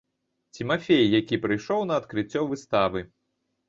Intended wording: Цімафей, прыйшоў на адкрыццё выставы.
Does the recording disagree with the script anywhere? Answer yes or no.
yes